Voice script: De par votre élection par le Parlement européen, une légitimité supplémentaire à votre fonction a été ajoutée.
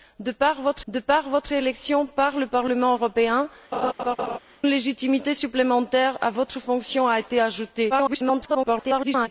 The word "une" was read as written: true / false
false